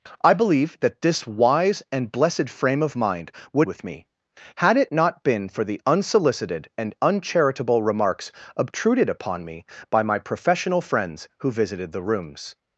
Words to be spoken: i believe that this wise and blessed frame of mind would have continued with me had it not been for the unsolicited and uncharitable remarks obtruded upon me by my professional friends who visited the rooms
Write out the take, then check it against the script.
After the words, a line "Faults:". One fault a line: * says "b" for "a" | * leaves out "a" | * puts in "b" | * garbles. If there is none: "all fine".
i believe that this wise and blessed frame of mind would with me had it not been for the unsolicited and uncharitable remarks obtruded upon me by my professional friends who visited the rooms
Faults:
* leaves out "have continued"